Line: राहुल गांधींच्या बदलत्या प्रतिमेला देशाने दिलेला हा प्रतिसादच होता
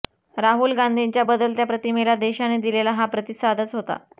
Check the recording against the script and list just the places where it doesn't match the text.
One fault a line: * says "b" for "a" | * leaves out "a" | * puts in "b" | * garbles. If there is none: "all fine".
all fine